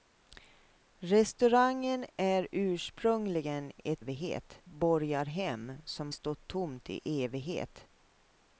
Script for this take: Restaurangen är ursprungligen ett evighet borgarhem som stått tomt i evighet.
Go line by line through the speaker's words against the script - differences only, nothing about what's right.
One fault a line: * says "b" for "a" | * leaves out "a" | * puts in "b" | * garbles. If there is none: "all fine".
all fine